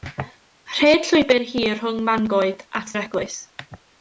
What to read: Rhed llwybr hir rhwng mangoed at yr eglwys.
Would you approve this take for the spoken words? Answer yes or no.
yes